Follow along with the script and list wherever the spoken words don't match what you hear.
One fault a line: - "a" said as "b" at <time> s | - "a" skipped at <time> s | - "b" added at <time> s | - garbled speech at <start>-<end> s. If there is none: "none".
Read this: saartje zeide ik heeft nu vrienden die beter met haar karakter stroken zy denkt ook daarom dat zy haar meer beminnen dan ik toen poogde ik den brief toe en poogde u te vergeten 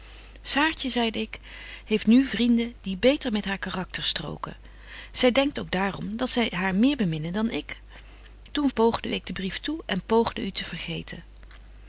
none